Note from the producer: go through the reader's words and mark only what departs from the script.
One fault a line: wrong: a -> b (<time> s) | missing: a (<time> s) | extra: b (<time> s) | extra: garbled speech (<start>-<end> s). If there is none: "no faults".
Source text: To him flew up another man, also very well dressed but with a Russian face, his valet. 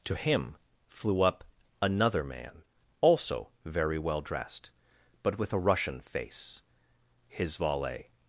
no faults